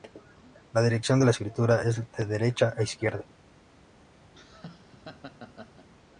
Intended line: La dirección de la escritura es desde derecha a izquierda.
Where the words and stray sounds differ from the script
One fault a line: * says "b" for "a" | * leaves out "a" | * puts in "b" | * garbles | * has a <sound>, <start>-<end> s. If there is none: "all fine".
* says "de" for "desde"
* has a laugh, 4.3-5.9 s